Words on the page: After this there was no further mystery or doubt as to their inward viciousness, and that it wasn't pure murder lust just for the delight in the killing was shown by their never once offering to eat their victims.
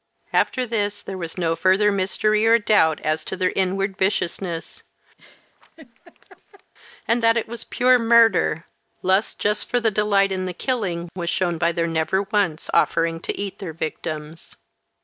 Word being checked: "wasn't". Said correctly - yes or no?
no